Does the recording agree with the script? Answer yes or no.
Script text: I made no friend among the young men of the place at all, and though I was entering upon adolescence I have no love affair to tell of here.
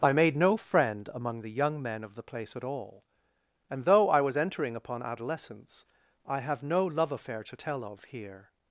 yes